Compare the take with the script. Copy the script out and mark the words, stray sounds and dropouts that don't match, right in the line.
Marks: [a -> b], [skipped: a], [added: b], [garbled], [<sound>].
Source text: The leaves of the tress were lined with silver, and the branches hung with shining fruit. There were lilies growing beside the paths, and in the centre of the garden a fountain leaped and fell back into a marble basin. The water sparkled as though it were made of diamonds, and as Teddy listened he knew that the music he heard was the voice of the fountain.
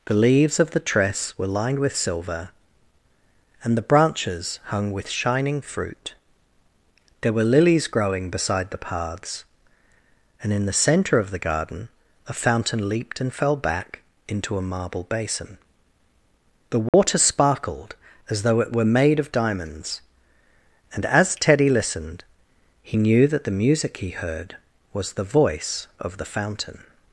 The leaves of the tress were lined with silver, and the branches hung with shining fruit. There were lilies growing beside the paths, and in the centre of the garden a fountain leaped and fell back into a marble basin. The water [dropout] sparkled as though it were made of diamonds, and as Teddy listened he knew that the music he heard was the voice of the fountain.